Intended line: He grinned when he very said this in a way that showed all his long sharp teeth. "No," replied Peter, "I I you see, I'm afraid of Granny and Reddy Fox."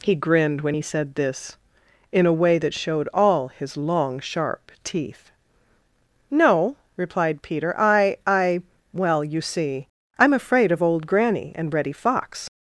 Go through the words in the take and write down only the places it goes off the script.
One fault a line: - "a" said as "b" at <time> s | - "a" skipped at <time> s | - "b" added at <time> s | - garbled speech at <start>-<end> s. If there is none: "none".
- "very" skipped at 0.8 s
- "well" added at 8.9 s
- "Old" added at 10.8 s